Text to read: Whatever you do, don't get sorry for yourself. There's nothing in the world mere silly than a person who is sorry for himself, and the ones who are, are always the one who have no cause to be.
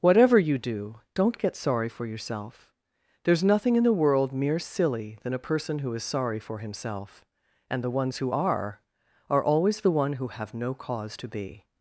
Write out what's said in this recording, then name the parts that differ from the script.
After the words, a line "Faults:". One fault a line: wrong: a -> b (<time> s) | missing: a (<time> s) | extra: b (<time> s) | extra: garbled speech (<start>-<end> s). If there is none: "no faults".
Whatever you do, don't get sorry for yourself. There's nothing in the world mere silly than a person who is sorry for himself, and the ones who are, are always the one who have no cause to be.
Faults:
no faults